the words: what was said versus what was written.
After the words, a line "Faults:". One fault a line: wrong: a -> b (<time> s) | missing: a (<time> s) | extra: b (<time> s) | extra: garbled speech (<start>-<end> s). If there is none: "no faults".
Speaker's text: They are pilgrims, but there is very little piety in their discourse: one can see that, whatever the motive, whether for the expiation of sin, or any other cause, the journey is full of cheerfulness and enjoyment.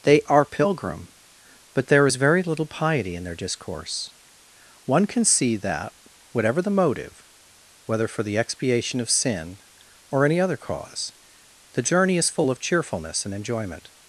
They are pilgrim, but there is very little piety in their discourse: one can see that, whatever the motive, whether for the expiation of sin, or any other cause, the journey is full of cheerfulness and enjoyment.
Faults:
wrong: pilgrims -> pilgrim (0.5 s)